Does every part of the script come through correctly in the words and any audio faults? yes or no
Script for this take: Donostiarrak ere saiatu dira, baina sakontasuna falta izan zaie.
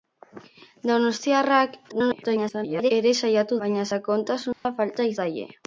no